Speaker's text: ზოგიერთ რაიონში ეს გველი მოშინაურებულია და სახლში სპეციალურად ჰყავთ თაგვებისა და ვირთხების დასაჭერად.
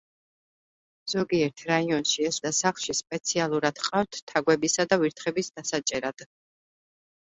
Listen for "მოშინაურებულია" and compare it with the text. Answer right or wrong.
wrong